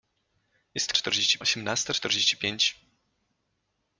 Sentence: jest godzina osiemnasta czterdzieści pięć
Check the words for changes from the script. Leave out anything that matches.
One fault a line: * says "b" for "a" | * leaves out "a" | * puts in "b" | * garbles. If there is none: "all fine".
* says "czterdzieści" for "godzina"